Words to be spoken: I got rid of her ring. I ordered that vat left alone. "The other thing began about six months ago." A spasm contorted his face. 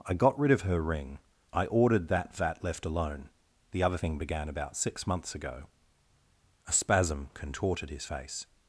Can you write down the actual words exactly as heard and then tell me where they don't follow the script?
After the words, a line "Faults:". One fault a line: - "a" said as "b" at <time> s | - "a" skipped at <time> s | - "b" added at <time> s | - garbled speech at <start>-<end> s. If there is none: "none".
I got rid of her ring. I ordered that vat left alone. "The other thing began about six months ago." A spasm contorted his face.
Faults:
none